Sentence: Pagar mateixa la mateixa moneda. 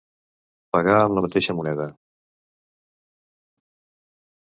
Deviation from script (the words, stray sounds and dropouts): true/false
true